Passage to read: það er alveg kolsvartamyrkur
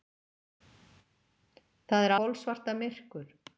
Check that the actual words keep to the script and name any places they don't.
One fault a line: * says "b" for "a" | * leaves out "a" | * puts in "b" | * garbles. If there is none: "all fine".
* leaves out "alveg"